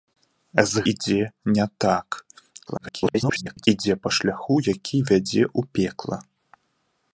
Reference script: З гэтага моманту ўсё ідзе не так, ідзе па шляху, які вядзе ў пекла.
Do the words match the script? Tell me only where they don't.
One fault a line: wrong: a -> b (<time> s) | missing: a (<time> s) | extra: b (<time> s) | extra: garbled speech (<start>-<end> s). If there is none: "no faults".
missing: гэтага моманту ўсё (0.8 s)
extra: garbled speech (2.7-3.7 s)